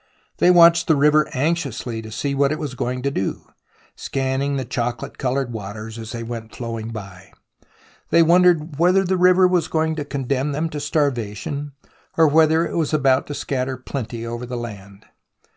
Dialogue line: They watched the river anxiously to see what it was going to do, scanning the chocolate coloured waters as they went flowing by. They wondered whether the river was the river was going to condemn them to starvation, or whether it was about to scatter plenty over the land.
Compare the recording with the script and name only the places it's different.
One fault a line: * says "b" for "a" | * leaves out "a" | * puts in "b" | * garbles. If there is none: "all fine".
* leaves out "the river was"